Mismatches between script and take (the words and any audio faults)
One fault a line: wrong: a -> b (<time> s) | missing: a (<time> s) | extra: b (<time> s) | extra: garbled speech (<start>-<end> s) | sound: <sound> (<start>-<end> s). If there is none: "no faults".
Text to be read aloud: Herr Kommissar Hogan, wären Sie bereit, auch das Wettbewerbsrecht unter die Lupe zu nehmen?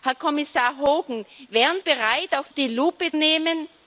missing: Sie (1.8 s)
missing: das Wettbewerbsrecht unter (2.5 s)
missing: zu (3.1 s)